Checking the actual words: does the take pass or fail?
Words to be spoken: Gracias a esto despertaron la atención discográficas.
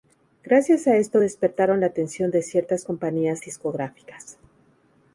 fail